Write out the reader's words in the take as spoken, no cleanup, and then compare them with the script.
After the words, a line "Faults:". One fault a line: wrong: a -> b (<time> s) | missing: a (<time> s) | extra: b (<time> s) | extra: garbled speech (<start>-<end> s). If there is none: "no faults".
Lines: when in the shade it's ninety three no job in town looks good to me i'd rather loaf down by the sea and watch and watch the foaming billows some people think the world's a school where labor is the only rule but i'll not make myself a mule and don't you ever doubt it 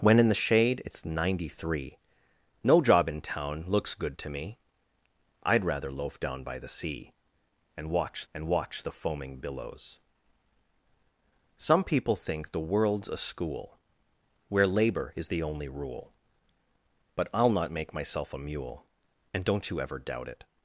when in the shade it's ninety three no job in town looks good to me i'd rather loaf down by the sea and watch and watch the foaming billows some people think the world's a school where labor is the only rule but i'll not make myself a mule and don't you ever doubt it
Faults:
no faults